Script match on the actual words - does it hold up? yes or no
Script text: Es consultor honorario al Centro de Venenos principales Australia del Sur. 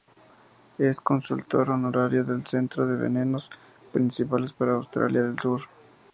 no